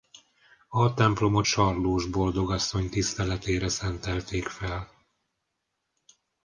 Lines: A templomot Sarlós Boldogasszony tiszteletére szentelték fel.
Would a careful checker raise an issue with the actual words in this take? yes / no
no